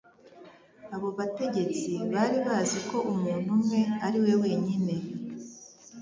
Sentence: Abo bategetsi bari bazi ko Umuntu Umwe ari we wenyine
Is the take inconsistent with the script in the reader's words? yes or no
no